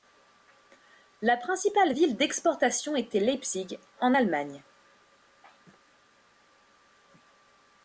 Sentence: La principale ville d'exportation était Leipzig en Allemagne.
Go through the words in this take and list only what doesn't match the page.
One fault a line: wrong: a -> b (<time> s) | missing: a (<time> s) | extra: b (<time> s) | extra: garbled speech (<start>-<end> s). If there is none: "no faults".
no faults